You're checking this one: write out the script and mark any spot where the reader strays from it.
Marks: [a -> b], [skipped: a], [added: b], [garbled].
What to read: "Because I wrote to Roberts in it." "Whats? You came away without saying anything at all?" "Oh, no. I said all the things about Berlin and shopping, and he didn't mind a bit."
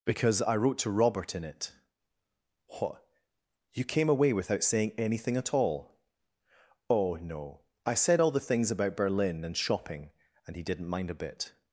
"Because I wrote to [Roberts -> Robert] in it." ["Whats? -> What] You came away without saying anything at all?" "Oh, no. I said all the things about Berlin and shopping, and he didn't mind a bit."